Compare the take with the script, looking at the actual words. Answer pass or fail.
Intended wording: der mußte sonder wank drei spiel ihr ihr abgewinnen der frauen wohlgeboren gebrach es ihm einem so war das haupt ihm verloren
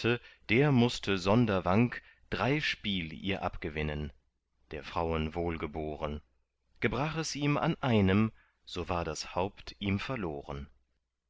fail